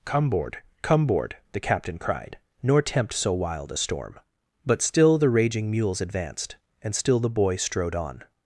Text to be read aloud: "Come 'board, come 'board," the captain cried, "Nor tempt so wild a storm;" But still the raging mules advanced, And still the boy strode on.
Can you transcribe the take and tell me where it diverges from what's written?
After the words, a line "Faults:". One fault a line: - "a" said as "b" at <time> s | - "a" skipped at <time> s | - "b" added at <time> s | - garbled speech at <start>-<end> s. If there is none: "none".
"Come 'board, come 'board," the captain cried, "Nor tempt so wild a storm;" But still the raging mules advanced, And still the boy strode on.
Faults:
none